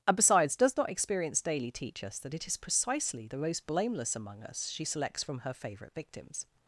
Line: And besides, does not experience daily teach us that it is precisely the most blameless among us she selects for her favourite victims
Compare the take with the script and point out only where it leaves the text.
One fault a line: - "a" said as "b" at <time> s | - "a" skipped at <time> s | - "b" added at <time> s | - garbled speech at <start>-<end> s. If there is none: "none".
- "for" said as "from" at 5.2 s